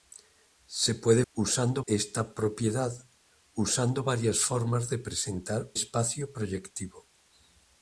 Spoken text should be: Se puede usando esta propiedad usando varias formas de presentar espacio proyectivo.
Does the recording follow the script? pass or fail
pass